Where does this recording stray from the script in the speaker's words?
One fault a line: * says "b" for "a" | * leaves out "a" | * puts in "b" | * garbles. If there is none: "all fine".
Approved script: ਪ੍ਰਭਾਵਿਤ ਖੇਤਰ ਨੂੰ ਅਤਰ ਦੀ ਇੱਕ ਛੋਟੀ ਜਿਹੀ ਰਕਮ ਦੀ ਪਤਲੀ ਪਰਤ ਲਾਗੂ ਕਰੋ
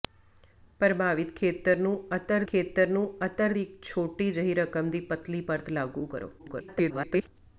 * puts in "ਖੇਤਰ ਨੂੰ ਅਤਰ"
* garbles